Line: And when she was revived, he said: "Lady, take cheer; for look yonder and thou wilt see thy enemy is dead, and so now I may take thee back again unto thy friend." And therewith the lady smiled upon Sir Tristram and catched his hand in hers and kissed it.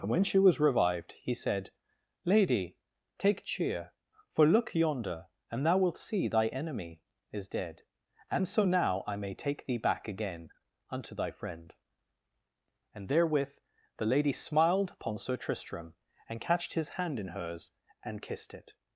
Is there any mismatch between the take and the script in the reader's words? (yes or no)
no